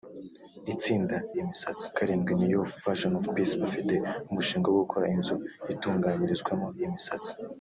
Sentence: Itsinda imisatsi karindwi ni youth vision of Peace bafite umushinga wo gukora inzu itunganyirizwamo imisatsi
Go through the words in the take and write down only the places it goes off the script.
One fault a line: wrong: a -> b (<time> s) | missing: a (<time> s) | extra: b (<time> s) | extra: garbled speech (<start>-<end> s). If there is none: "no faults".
no faults